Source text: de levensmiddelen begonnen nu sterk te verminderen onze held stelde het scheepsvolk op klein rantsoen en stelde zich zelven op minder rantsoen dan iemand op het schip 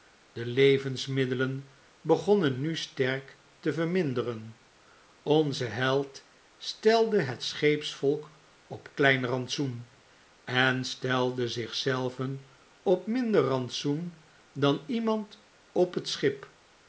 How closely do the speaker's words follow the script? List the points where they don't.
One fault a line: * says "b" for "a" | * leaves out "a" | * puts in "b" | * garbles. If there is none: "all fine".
all fine